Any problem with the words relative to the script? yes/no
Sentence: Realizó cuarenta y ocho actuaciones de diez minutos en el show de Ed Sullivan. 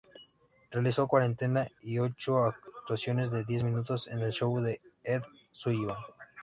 no